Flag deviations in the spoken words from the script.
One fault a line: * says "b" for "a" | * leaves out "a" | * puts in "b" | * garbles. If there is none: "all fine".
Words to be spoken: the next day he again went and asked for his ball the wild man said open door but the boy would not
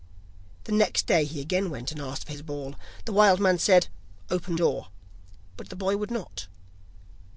all fine